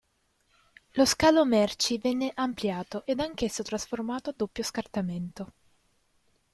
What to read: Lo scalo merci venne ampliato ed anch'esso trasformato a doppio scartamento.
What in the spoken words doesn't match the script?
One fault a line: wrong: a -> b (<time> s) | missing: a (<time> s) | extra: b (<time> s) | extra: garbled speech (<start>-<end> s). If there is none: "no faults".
no faults